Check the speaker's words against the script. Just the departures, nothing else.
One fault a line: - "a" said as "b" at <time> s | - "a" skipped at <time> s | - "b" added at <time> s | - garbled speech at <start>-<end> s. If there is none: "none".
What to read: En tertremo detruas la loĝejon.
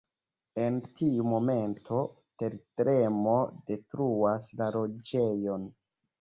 - "tiu momento" added at 1.0 s